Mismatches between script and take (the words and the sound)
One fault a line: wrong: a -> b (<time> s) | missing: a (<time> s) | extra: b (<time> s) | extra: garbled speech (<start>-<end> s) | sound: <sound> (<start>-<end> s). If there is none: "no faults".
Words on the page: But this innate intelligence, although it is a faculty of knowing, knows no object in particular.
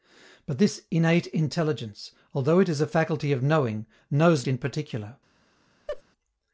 missing: no object (4.5 s)
sound: laugh (5.9-6.0 s)